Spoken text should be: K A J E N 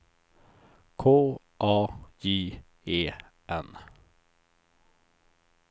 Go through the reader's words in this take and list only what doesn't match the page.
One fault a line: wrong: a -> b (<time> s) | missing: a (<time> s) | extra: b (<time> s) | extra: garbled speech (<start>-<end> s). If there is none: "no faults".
no faults